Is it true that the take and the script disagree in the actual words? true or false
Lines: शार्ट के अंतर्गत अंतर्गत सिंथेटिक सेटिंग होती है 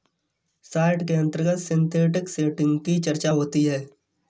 true